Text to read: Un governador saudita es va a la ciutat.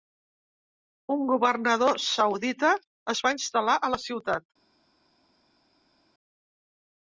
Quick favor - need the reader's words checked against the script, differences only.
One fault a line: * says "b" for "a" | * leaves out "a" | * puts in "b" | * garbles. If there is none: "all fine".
* puts in "instal·lar"